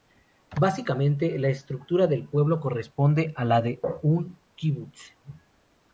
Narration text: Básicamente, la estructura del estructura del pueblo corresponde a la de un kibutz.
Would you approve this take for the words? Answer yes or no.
no